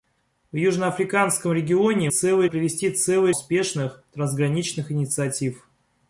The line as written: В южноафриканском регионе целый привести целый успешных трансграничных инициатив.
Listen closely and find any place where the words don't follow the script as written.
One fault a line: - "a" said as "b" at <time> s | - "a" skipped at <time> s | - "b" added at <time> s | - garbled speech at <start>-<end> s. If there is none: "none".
none